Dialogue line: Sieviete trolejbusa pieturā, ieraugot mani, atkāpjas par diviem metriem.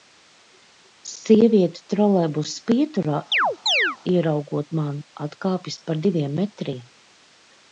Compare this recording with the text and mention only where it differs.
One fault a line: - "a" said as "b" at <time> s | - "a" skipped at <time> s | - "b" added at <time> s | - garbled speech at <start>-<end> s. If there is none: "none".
none